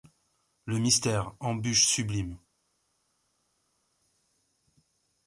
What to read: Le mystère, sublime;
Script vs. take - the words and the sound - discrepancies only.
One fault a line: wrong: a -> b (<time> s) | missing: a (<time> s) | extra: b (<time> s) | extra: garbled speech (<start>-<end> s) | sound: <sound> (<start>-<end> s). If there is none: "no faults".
extra: embûche (1.4 s)